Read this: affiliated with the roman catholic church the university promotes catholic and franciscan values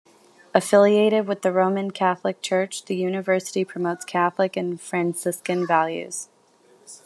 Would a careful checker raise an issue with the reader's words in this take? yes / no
no